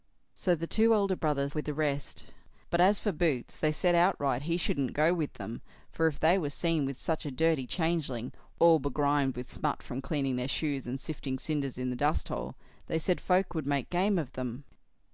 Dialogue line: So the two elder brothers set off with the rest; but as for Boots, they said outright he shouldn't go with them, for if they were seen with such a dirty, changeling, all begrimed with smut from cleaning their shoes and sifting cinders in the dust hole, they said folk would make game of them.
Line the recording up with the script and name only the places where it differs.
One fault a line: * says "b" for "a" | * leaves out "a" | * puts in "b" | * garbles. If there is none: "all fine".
* leaves out "set off"